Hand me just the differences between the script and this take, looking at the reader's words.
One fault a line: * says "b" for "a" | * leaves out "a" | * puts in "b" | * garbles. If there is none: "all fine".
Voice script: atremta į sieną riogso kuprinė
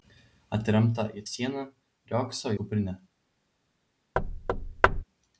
all fine